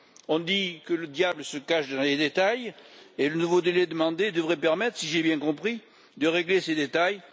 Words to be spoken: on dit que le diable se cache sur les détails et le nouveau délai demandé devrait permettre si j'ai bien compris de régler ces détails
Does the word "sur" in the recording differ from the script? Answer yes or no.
yes